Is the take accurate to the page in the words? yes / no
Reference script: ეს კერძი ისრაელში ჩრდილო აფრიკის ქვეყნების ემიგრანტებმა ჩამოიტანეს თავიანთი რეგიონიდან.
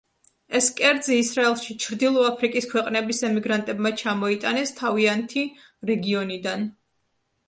yes